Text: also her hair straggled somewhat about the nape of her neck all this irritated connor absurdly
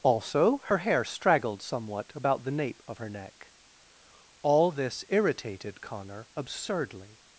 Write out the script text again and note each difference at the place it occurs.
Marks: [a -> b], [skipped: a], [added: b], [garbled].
also her hair straggled somewhat about the nape of her neck all this irritated connor absurdly